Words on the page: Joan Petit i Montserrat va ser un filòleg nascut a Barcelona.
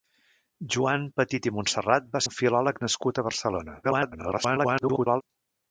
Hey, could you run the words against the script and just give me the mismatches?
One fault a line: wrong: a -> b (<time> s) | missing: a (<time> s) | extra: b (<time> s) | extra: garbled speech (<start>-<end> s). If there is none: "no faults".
missing: ser (2.2 s)
extra: garbled speech (3.8-5.2 s)